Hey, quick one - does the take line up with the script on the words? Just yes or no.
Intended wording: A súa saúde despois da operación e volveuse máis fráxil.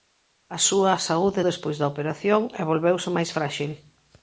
yes